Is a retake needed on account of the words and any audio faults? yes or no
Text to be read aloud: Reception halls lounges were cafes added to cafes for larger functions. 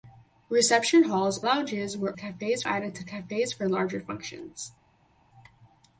no